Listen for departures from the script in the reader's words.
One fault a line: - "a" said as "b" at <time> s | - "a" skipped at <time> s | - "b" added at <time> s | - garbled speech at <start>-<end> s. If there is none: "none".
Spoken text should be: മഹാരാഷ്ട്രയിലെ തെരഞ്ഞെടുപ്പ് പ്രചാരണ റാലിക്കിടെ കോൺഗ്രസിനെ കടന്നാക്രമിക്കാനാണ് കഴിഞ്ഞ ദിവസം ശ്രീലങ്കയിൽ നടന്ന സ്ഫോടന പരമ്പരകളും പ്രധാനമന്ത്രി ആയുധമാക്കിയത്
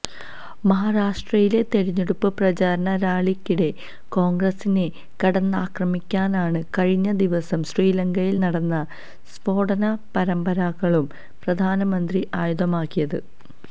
none